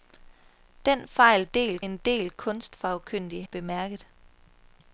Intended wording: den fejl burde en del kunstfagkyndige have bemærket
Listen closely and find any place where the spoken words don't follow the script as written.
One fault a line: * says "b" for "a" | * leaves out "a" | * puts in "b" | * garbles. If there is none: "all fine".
* says "del" for "burde"
* leaves out "have"